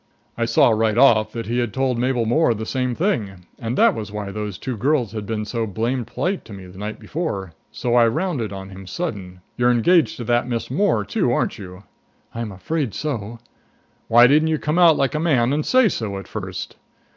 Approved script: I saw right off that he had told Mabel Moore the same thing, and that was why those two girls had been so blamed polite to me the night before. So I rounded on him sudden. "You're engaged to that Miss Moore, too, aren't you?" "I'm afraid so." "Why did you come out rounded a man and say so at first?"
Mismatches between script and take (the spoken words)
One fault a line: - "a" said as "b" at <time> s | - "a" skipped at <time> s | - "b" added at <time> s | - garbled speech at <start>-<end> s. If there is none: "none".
- "did" said as "didn't" at 14.3 s
- "rounded" said as "like" at 14.9 s